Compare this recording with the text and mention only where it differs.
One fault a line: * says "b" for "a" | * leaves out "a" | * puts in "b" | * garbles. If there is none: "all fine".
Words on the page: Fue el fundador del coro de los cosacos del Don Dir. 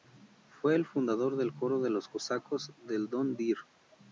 all fine